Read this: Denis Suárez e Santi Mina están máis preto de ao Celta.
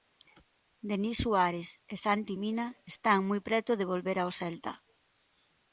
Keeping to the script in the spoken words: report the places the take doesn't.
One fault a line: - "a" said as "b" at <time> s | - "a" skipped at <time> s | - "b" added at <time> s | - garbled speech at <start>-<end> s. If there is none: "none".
- "máis" said as "moi" at 3.3 s
- "volver" added at 3.9 s